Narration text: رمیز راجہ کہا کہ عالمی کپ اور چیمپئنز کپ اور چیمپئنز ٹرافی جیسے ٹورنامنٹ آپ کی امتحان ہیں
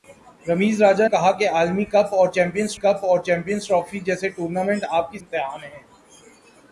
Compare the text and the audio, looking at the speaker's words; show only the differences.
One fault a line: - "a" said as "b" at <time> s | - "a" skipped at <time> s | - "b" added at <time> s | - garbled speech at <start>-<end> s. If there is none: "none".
none